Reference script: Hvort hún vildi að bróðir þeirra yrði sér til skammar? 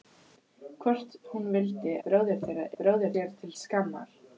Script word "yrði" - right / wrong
wrong